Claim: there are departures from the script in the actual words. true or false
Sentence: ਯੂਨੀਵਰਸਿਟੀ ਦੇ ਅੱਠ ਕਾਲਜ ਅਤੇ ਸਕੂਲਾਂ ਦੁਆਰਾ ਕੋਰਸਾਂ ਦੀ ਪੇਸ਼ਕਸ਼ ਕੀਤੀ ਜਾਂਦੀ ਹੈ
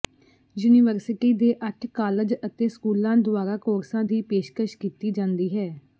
false